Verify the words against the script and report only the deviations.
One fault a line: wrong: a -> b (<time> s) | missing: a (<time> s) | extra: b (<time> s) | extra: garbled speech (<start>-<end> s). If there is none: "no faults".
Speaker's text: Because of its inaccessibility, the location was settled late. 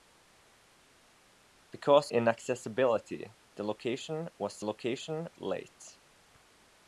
missing: of its (2.1 s)
wrong: settled -> location (4.6 s)